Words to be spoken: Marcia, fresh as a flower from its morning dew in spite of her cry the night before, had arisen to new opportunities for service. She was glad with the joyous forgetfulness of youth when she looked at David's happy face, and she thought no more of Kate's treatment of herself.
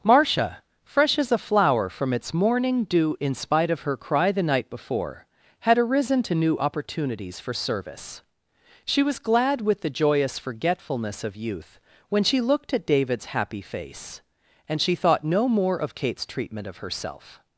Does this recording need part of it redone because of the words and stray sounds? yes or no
no